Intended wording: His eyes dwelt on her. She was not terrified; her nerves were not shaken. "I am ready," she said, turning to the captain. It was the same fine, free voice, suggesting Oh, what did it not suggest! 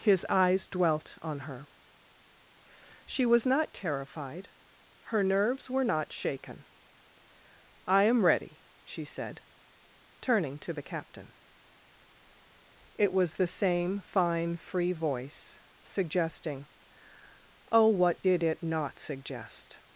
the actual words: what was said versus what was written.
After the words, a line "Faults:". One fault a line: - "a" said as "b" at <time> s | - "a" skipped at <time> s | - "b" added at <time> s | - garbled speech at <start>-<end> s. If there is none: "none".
His eyes dwelt on her. She was not terrified; her nerves were not shaken. "I am ready," she said, turning to the captain. It was the same fine, free voice, suggesting Oh, what did it not suggest!
Faults:
none